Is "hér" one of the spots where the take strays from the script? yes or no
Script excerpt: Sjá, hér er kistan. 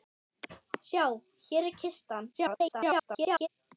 no